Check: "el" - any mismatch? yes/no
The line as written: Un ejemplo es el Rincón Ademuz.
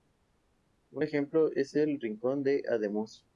no